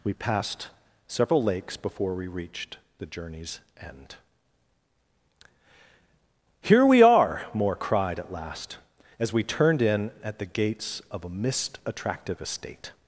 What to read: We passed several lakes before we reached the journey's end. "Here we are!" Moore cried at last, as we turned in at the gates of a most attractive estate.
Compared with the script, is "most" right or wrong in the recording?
wrong